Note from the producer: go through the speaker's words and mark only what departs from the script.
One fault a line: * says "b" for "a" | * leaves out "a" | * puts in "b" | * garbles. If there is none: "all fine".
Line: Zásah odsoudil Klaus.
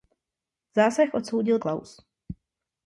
all fine